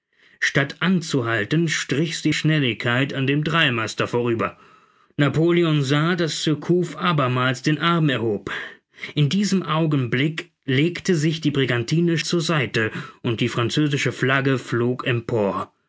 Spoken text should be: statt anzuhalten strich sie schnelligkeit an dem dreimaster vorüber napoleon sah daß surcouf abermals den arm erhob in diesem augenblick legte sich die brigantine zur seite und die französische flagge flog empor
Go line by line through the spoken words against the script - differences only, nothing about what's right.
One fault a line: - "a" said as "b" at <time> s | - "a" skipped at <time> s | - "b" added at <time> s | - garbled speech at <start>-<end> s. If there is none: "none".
none